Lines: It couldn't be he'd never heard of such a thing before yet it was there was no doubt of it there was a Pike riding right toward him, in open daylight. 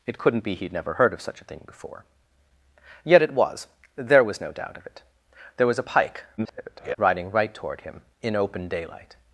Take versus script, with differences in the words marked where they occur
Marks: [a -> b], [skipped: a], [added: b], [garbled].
It couldn't be he'd never heard of such a thing before yet it was there was no doubt of it there was a Pike [garbled] riding right toward him, in open daylight.